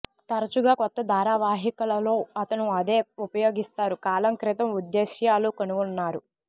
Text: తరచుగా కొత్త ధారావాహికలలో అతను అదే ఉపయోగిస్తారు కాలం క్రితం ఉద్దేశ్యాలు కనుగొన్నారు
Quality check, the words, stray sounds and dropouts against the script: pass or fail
pass